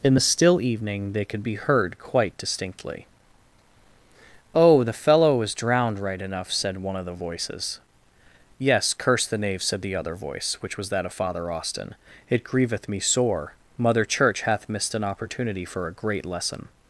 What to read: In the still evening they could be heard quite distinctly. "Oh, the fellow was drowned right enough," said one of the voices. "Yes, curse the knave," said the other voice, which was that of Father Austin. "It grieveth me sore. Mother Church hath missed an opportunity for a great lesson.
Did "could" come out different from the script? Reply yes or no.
no